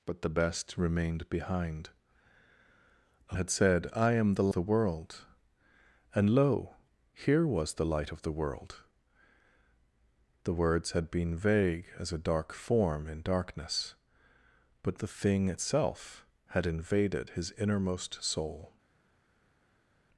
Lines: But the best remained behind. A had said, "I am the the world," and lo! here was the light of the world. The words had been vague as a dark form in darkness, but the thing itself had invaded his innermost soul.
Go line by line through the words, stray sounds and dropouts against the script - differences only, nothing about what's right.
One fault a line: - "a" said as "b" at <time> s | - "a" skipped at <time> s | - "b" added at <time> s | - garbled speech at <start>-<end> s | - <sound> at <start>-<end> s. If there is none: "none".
none